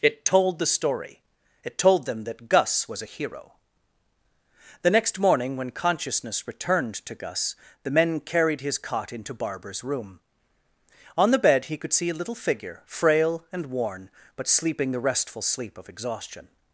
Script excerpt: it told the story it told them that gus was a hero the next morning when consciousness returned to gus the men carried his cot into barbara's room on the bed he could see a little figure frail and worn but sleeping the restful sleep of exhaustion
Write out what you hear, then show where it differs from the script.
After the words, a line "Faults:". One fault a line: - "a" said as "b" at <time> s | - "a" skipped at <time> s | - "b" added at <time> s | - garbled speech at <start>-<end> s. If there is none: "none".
it told the story it told them that gus was a hero the next morning when consciousness returned to gus the men carried his cot into barbara's room on the bed he could see a little figure frail and worn but sleeping the restful sleep of exhaustion
Faults:
none